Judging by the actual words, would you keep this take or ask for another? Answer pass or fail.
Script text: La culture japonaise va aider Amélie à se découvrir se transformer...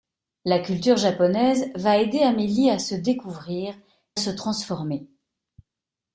pass